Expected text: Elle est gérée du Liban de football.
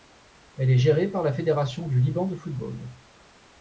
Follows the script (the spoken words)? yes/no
no